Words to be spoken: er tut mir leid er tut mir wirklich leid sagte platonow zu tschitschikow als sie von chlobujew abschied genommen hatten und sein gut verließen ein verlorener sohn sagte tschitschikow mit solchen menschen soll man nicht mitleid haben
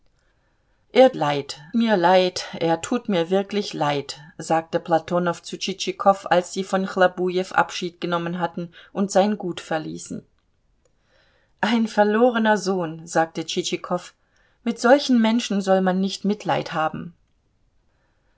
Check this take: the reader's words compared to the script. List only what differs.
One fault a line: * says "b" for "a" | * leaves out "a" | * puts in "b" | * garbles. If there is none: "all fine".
* says "leid" for "tut"